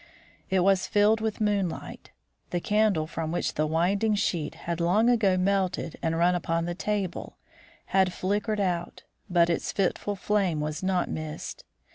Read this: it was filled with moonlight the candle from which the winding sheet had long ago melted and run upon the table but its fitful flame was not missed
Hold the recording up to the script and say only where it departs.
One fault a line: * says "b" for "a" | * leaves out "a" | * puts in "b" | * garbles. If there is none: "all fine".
* puts in "had flickered out"